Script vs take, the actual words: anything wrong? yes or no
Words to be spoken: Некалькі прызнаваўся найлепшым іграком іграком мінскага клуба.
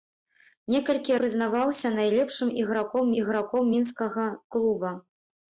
no